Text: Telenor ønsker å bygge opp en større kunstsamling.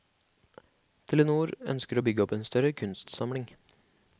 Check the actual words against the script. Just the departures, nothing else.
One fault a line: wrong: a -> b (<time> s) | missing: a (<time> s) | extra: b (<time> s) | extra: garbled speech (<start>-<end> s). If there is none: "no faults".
no faults